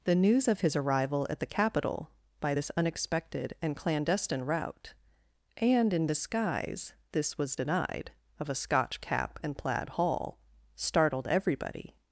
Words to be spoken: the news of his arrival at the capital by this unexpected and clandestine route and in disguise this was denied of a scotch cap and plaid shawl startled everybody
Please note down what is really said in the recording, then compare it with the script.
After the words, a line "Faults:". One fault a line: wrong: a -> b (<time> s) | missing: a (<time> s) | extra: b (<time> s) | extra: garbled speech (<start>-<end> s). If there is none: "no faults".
the news of his arrival at the capital by this unexpected and clandestine route and in disguise this was denied of a scotch cap and plaid hall startled everybody
Faults:
wrong: shawl -> hall (9.9 s)